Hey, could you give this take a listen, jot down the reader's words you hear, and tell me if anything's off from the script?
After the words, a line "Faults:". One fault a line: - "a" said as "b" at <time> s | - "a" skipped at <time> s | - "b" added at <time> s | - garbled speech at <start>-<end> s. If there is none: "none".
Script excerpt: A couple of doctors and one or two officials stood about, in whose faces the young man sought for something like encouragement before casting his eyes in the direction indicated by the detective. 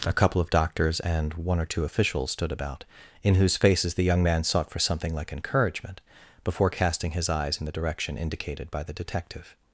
A couple of doctors and one or two officials stood about, in whose faces the young man sought for something like encouragement before casting his eyes in the direction indicated by the detective.
Faults:
none